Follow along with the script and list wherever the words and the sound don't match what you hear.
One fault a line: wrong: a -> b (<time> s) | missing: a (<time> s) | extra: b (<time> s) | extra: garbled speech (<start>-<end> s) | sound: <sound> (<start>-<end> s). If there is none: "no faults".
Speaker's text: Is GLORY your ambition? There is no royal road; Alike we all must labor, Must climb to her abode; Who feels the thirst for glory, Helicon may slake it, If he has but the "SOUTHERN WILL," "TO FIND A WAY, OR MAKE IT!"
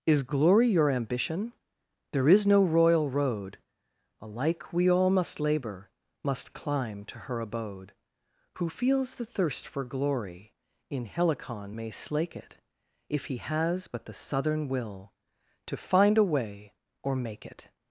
extra: In (10.9 s)